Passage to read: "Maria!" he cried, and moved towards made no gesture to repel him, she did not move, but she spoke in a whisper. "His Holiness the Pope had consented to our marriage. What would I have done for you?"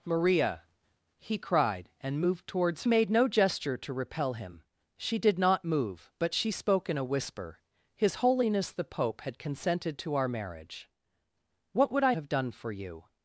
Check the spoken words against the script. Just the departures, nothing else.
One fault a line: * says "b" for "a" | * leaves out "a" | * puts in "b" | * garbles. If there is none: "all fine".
all fine